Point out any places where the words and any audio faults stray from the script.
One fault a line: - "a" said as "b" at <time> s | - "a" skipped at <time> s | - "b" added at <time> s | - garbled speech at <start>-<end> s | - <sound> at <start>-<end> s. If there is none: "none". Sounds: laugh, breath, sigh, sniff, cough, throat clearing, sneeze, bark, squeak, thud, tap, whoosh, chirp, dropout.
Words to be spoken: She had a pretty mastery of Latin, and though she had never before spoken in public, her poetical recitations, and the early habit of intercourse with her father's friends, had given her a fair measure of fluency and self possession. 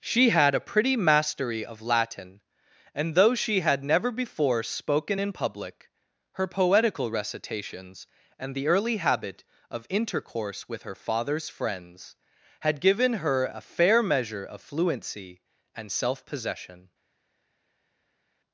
none